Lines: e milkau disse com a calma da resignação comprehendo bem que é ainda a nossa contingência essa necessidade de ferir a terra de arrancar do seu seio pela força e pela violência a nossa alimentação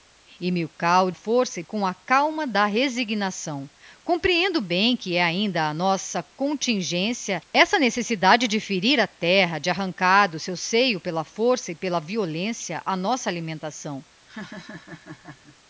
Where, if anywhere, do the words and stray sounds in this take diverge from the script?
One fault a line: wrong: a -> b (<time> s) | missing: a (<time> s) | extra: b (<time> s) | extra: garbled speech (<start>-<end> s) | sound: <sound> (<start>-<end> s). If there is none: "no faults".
wrong: disse -> força (1.1 s)
sound: laugh (14.3-15.6 s)